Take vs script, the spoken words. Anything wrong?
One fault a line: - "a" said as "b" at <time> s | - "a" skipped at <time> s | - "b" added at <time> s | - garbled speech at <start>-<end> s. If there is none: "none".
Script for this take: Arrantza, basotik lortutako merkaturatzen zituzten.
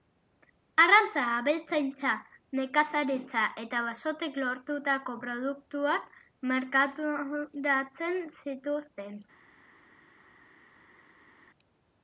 - "abeltzaintza nekazaritza eta" added at 1.4 s
- "produktuak" added at 5.3 s